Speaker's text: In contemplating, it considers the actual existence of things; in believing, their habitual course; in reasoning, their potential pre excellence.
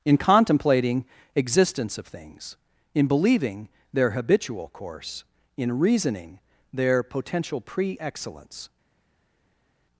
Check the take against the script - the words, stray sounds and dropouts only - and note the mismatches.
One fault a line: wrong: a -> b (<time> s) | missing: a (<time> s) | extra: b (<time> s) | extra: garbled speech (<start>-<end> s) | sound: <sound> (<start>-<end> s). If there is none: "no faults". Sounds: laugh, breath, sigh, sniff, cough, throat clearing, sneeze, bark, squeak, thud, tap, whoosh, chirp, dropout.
missing: it considers the actual (1.1 s)